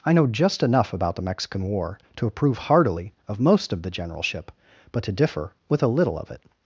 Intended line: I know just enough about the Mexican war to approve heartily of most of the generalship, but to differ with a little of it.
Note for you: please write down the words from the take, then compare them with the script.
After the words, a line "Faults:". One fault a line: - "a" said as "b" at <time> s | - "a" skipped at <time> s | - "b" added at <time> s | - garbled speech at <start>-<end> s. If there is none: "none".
I know just enough about the Mexican war to approve heartily of most of the generalship, but to differ with a little of it.
Faults:
none